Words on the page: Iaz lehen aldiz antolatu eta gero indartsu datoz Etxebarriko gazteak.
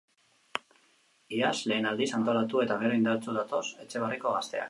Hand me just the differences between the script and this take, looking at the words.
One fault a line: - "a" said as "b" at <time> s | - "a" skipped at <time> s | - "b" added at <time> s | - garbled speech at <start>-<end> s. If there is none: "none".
none